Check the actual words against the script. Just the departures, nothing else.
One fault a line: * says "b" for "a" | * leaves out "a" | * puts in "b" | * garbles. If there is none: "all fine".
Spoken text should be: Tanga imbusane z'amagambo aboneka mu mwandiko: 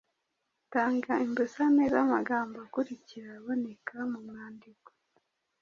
* puts in "akurikira"